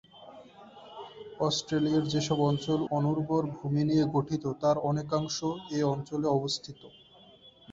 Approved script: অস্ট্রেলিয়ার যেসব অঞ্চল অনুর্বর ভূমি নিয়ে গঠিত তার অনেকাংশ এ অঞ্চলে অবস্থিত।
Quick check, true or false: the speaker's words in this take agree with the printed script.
true